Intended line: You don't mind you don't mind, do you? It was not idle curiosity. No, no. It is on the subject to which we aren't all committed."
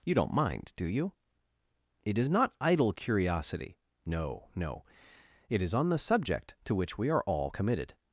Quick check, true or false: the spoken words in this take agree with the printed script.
false